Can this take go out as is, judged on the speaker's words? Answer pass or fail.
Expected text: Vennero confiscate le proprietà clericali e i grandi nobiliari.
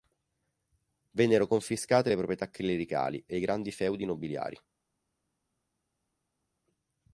fail